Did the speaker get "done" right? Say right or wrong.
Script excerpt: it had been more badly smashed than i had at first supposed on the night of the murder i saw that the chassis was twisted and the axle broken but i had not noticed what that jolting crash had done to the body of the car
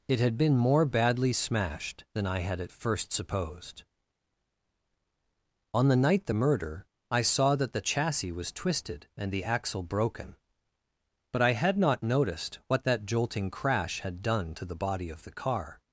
right